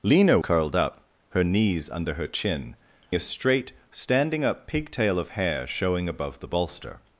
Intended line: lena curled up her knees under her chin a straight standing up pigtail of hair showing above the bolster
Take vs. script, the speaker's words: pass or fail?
pass